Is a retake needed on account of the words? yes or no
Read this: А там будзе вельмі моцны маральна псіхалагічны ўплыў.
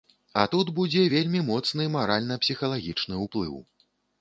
yes